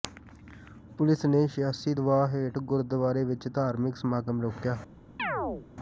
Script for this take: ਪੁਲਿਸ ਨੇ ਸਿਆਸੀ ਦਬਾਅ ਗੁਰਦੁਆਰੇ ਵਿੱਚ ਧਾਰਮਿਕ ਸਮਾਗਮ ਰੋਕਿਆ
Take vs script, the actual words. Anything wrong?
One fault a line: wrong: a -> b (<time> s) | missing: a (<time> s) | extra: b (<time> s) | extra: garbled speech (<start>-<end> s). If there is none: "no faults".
extra: ਹੇਠ (2.3 s)